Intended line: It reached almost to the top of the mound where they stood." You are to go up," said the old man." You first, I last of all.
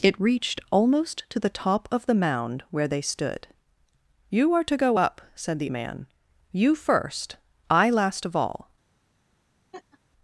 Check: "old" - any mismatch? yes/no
yes